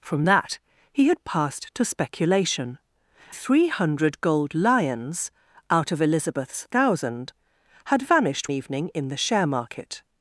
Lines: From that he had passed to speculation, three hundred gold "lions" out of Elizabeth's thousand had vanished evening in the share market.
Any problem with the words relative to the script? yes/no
no